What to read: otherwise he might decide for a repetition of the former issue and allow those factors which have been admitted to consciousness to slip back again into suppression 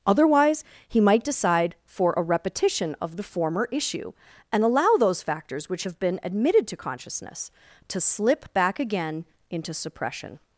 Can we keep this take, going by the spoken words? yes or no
yes